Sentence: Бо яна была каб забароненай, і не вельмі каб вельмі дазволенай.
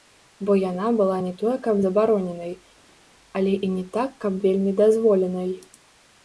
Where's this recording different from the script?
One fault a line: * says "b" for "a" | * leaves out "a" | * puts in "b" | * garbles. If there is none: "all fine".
* puts in "не тое"
* puts in "але"
* says "так" for "вельмі"